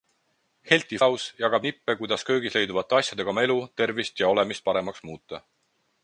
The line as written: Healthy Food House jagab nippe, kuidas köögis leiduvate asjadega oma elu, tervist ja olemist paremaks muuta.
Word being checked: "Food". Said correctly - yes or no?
no